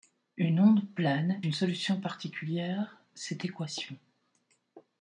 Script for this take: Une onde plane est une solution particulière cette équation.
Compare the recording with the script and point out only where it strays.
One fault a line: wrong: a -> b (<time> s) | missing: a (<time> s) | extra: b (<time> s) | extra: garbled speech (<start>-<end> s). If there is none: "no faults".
missing: est (1.4 s)